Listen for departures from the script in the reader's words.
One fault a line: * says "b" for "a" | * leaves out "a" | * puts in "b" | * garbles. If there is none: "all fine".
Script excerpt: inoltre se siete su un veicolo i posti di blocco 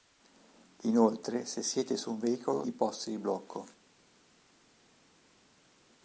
all fine